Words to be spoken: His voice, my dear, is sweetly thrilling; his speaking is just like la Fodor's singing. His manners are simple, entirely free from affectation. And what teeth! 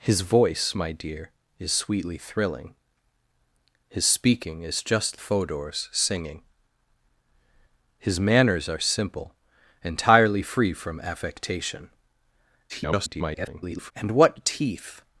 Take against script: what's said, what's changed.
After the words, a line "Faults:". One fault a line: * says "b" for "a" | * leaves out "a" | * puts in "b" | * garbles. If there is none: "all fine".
His voice, my dear, is sweetly thrilling; his speaking is just Fodor's singing. His manners are simple, entirely free from affectation. [garbled] And what teeth!
Faults:
* leaves out "like la"
* garbles